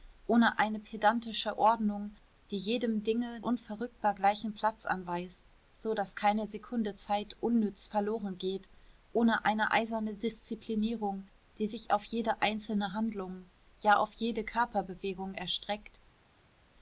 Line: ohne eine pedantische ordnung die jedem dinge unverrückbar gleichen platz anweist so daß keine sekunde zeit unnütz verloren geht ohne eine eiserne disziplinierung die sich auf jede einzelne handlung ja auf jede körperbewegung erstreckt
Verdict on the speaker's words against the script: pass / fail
pass